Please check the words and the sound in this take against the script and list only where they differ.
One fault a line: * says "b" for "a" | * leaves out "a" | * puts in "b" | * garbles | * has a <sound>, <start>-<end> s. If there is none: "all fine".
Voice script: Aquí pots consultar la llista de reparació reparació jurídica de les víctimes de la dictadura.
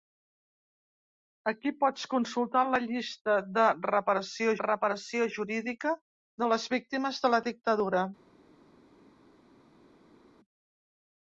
all fine